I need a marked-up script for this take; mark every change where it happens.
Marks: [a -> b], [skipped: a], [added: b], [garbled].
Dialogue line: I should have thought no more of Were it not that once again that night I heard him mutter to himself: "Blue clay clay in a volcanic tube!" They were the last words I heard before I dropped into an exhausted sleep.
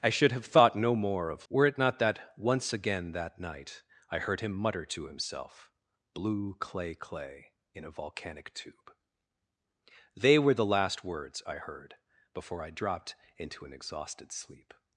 I should have thought no more of Were it not that once again that night I heard him mutter to himself: "Blue clay clay in a volcanic tube!" They were the last words I heard before I dropped into an exhausted sleep.